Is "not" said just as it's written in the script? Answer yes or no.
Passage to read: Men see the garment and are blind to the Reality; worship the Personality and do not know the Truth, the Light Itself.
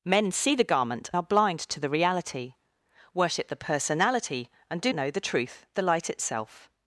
no